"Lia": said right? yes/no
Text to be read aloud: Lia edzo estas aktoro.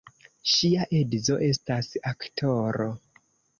no